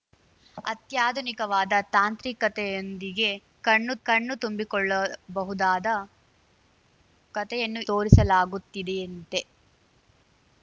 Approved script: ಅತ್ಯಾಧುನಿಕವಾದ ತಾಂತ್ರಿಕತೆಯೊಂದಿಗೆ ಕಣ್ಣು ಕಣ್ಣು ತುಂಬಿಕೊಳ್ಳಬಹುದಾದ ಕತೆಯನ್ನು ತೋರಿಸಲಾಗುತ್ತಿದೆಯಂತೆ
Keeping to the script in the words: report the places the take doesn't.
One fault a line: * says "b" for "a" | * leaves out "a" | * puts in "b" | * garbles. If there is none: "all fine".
all fine